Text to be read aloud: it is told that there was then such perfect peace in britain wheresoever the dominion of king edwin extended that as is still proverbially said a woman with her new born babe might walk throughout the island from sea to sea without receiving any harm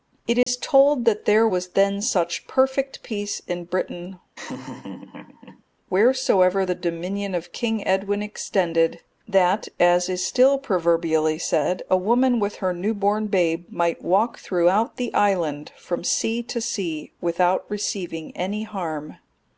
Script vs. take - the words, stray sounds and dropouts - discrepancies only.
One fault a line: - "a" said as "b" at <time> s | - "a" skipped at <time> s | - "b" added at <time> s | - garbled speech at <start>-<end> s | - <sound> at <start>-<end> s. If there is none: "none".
- dropout at 0.4-0.5 s
- laugh at 4.4-5.6 s